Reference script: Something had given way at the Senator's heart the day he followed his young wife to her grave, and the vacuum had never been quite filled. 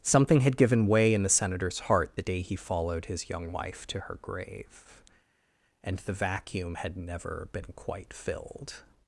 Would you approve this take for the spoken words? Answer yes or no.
no